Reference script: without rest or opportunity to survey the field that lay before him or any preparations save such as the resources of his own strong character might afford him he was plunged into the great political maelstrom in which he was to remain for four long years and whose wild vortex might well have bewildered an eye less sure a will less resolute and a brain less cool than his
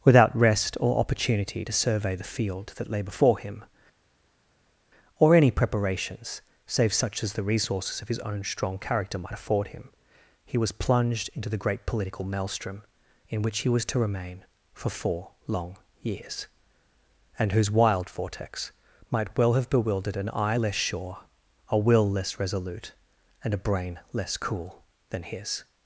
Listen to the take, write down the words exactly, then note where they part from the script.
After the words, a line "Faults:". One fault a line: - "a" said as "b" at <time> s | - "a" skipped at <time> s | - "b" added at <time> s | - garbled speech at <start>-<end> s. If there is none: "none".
without rest or opportunity to survey the field that lay before him or any preparations save such as the resources of his own strong character might afford him he was plunged into the great political maelstrom in which he was to remain for four long years and whose wild vortex might well have bewildered an eye less sure a will less resolute and a brain less cool than his
Faults:
none